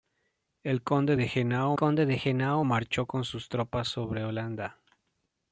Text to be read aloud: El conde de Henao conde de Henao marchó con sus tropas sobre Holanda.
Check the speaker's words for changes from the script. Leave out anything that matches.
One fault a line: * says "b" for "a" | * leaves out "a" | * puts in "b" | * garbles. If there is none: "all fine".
all fine